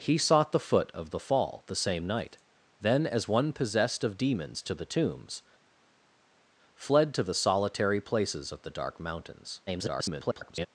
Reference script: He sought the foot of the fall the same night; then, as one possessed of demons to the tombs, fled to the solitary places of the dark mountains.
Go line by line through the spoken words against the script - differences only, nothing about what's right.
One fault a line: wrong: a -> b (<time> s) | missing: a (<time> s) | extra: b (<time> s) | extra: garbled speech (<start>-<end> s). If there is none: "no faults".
extra: garbled speech (9.7-10.7 s)